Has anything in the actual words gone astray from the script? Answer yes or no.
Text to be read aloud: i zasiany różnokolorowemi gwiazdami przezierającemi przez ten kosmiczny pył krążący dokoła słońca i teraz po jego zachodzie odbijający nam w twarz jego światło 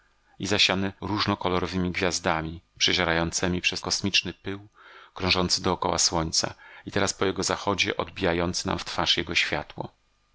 yes